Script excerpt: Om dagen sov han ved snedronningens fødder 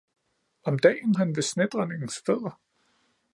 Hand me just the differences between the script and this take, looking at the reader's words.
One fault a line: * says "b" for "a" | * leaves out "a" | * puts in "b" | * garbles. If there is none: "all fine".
* leaves out "sov"